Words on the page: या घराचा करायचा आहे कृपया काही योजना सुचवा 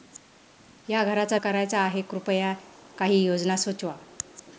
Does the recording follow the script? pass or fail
pass